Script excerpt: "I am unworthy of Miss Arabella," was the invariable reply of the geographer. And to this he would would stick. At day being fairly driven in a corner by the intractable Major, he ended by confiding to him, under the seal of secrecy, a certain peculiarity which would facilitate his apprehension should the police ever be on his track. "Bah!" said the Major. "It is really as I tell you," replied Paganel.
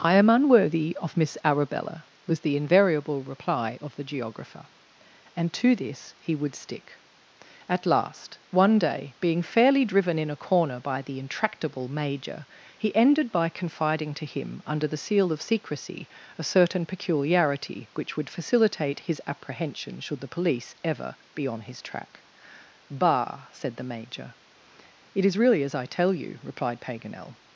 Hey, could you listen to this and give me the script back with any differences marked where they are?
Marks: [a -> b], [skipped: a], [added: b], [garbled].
"I am unworthy of Miss Arabella," was the invariable reply of the geographer. And to this he would [skipped: would] stick. At [added: last one] day being fairly driven in a corner by the intractable Major, he ended by confiding to him, under the seal of secrecy, a certain peculiarity which would facilitate his apprehension should the police ever be on his track. "Bah!" said the Major. "It is really as I tell you," replied Paganel.